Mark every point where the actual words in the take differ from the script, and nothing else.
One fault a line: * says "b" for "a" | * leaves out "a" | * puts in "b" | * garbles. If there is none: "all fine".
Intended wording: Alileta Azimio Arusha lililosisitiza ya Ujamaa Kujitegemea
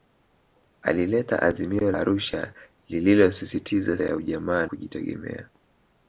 all fine